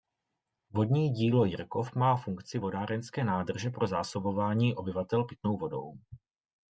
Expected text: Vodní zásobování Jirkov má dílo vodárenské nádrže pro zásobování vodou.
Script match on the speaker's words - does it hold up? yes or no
no